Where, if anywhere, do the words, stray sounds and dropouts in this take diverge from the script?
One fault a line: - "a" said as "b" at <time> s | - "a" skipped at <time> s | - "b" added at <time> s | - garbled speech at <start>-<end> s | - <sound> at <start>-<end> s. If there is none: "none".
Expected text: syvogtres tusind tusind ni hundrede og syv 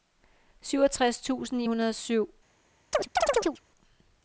- "tusind" skipped at 1.6 s
- chirp at 2.9-3.6 s